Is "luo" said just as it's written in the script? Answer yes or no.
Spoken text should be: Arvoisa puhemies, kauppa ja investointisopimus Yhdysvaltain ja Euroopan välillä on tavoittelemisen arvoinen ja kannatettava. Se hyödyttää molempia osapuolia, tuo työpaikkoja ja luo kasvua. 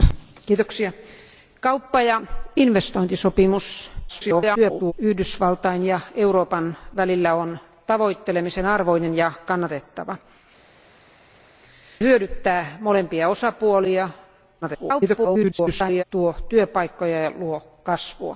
yes